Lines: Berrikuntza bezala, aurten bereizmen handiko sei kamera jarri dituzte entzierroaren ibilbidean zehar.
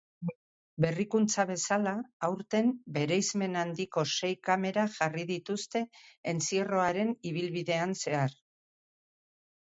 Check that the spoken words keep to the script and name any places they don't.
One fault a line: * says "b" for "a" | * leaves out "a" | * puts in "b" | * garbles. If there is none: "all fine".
all fine